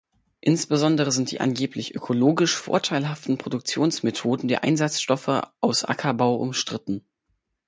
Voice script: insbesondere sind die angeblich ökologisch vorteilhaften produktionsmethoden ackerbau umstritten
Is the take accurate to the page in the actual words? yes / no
no